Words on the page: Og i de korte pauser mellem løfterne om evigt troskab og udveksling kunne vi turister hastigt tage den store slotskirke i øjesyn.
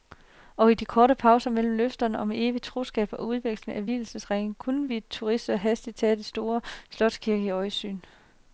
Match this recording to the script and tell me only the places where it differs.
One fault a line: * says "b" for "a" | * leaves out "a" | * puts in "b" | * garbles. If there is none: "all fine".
* puts in "af vielsesringe"